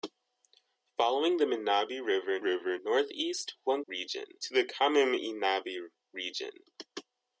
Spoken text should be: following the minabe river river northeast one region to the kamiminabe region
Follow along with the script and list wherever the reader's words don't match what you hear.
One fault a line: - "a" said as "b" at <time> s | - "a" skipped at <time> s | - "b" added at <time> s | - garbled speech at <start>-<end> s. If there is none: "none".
none